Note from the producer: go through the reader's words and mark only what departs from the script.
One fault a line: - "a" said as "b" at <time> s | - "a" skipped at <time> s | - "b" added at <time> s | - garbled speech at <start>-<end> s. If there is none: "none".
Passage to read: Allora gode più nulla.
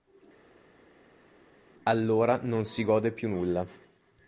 - "non si" added at 2.4 s